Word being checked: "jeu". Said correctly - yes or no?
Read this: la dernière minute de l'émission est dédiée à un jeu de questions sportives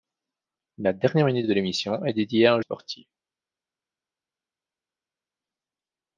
no